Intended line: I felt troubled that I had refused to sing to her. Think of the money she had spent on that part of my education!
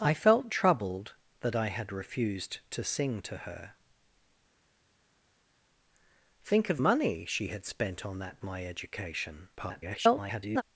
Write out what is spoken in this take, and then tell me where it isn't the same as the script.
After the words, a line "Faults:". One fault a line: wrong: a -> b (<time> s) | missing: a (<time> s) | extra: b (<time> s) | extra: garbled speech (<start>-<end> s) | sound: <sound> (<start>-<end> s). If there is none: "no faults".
I felt troubled that I had refused to sing to her. Think of money she had spent on that my education! [garbled]
Faults:
missing: the (6.8 s)
missing: part of (8.4 s)
extra: garbled speech (9.6-10.6 s)